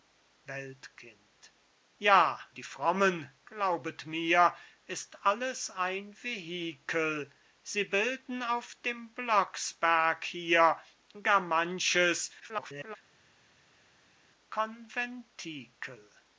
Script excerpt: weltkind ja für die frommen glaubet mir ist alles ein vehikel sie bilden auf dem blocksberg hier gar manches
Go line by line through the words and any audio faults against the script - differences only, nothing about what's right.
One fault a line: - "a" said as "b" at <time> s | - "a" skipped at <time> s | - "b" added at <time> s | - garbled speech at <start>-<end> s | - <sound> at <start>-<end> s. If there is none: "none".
- "für" skipped at 2.4 s
- garbled speech at 12.4-13.0 s